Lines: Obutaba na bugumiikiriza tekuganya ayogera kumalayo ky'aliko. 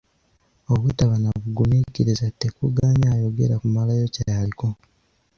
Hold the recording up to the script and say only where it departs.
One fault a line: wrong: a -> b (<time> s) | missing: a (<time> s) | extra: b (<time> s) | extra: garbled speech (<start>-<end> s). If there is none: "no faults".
no faults